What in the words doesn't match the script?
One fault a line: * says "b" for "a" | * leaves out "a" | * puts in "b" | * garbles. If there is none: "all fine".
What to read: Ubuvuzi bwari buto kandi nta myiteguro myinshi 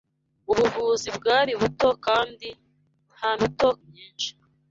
* says "buto" for "myiteguro"